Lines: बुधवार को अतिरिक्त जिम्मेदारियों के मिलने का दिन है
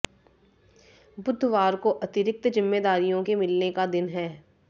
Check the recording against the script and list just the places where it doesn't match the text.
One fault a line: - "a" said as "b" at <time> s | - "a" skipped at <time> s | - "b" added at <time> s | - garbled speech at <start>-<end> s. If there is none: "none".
none